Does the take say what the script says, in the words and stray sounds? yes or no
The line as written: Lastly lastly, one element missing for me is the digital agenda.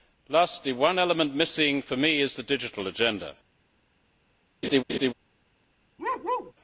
no